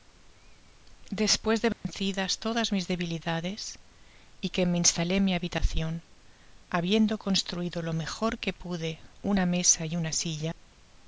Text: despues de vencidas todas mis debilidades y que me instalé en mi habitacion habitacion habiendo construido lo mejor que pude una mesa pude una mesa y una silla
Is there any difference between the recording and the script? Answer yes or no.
yes